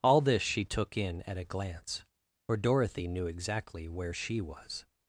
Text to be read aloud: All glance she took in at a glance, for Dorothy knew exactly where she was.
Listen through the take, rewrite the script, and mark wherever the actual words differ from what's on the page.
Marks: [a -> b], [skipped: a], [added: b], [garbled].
All [glance -> this] she took in at a glance, for Dorothy knew exactly where she was.